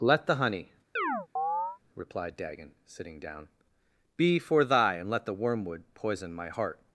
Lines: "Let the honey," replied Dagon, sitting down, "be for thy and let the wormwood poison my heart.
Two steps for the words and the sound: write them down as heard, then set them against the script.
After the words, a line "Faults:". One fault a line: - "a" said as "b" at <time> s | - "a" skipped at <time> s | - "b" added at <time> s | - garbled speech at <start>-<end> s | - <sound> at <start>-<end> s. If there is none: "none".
"Let the honey," replied Dagon, sitting down, "be for thy and let the wormwood poison my heart.
Faults:
- chirp at 1.0-1.8 s